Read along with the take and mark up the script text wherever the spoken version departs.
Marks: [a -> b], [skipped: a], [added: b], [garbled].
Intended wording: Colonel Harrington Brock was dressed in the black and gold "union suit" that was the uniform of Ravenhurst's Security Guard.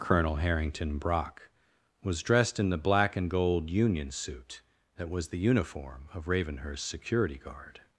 Colonel Harrington Brock was dressed in the black and gold "union suit" that was the uniform of Ravenhurst's Security Guard.